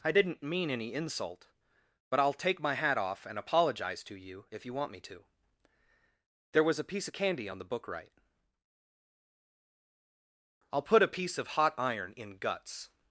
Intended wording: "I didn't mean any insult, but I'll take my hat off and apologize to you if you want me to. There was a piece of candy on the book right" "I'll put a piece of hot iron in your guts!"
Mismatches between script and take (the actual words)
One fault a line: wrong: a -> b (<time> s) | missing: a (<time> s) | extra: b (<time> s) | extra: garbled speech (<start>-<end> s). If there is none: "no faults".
missing: your (12.4 s)